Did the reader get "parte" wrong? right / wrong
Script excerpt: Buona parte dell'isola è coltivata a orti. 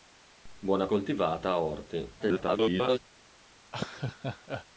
wrong